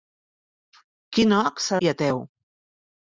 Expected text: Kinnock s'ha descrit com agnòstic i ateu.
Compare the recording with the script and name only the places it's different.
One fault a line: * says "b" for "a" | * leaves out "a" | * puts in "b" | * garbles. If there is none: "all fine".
* leaves out "descrit com agnòstic"